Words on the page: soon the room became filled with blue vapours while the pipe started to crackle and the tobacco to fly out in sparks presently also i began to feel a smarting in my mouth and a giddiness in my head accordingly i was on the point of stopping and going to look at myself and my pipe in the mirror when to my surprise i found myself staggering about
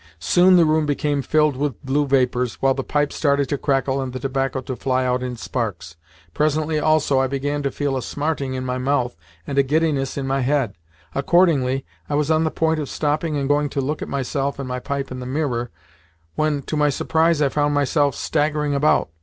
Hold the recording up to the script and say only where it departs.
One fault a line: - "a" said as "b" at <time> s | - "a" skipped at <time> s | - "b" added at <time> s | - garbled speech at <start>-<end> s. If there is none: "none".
none